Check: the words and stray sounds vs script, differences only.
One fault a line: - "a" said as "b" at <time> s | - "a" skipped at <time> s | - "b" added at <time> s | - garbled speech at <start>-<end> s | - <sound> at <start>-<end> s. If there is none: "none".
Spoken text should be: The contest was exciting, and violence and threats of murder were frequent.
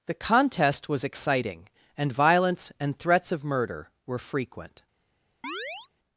- chirp at 5.4-5.9 s